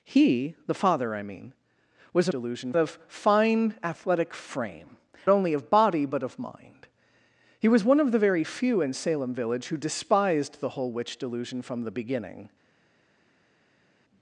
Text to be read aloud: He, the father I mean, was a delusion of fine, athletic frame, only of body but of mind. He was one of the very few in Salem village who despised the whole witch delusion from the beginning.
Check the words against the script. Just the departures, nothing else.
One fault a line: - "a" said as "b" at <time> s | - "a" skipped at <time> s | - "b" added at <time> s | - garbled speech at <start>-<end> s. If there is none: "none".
none